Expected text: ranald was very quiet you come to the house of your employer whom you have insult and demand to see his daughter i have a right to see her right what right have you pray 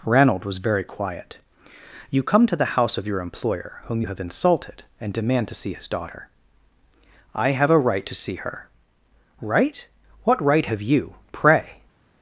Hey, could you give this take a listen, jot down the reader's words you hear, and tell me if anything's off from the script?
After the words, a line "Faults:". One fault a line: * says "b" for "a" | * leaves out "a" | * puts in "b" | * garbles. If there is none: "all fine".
ranald was very quiet you come to the house of your employer whom you have insulted and demand to see his daughter i have a right to see her right what right have you pray
Faults:
* says "insulted" for "insult"